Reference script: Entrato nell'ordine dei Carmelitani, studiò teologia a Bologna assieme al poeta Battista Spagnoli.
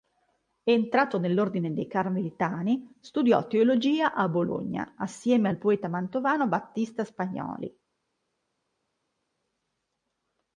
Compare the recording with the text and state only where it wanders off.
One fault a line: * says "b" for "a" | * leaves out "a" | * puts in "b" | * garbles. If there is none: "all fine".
* puts in "mantovano"